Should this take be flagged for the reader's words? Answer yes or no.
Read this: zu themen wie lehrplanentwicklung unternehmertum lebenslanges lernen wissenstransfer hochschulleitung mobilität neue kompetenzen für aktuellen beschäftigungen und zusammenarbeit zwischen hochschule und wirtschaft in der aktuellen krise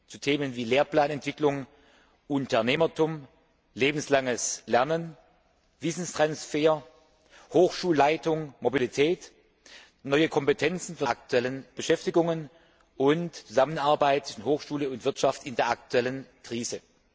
no